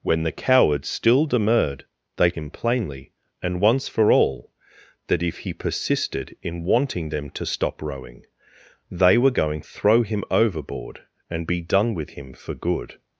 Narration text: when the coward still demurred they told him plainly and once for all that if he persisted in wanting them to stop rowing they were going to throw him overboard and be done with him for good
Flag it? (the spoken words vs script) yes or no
yes